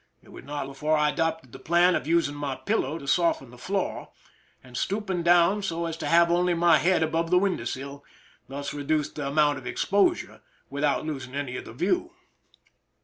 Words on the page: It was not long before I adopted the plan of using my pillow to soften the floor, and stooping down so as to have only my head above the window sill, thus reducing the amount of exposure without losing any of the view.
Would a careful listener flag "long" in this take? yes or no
yes